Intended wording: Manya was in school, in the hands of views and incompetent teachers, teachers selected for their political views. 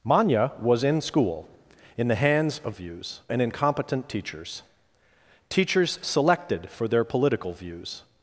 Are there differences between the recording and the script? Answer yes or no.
no